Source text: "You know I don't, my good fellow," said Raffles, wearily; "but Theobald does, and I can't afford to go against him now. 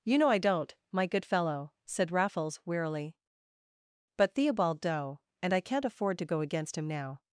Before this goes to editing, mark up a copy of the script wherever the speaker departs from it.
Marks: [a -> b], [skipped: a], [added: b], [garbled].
"You know I don't, my good fellow," said Raffles, wearily; "but Theobald [does, -> doe] and I can't afford to go against him now.